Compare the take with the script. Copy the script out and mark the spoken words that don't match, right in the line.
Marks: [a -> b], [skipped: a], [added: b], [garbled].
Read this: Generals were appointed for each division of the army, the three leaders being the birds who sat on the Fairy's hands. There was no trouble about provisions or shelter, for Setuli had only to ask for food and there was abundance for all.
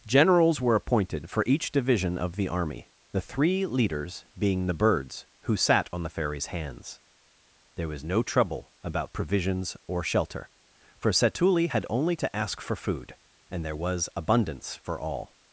Generals were appointed for each division of the army, the three leaders being the birds who sat on the Fairy's hands. There was no trouble about provisions or shelter, for Setuli had only to ask for food and there was abundance for all.